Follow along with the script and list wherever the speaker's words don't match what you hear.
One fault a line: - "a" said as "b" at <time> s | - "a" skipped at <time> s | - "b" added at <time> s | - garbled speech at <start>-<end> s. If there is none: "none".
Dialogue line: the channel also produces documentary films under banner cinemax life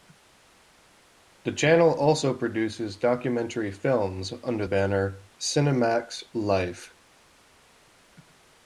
none